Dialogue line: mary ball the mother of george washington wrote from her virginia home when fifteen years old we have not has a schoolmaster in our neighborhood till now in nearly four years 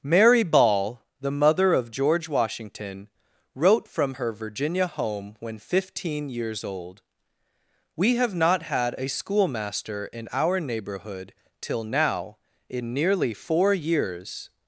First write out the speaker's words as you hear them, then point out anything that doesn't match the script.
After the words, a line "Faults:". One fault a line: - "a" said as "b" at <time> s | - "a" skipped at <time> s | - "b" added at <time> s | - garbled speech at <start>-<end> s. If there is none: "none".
mary ball the mother of george washington wrote from her virginia home when fifteen years old we have not had a schoolmaster in our neighborhood till now in nearly four years
Faults:
- "has" said as "had" at 8.6 s